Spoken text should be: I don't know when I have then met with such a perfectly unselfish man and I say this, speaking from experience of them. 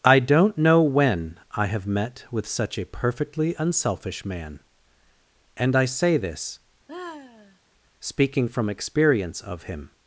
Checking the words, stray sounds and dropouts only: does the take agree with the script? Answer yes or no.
no